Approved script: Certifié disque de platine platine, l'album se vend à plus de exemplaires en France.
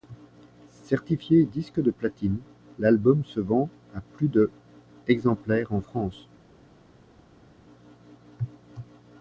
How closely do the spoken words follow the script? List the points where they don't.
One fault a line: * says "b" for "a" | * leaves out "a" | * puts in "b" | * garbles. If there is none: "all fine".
* leaves out "platine"